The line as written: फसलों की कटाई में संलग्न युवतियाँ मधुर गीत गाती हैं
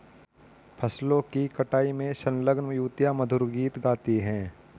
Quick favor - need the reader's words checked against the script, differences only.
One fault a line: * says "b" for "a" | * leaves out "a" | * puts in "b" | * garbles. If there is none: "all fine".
all fine